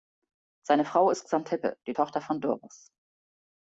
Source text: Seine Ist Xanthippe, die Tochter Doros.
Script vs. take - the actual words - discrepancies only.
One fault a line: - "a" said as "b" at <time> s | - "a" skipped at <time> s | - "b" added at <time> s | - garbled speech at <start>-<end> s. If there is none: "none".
- "Frau" added at 0.8 s
- "von" added at 2.2 s